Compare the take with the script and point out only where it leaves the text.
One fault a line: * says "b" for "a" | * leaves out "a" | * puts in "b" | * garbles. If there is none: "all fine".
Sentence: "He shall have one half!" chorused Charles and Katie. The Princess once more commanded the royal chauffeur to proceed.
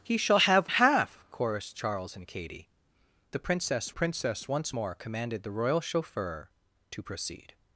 * leaves out "one"
* puts in "Princess"